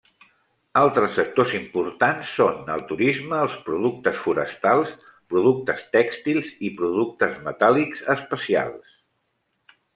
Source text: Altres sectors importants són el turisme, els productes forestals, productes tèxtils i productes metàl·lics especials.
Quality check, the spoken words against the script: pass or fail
pass